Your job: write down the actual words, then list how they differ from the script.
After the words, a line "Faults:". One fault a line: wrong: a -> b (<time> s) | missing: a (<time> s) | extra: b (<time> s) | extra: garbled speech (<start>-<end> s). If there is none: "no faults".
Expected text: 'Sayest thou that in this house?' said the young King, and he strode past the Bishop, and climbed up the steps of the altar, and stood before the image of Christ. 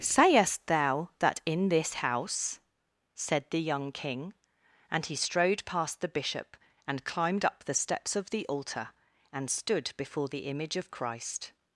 'Sayest thou that in this house?' said the young King, and he strode past the Bishop, and climbed up the steps of the altar, and stood before the image of Christ.
Faults:
no faults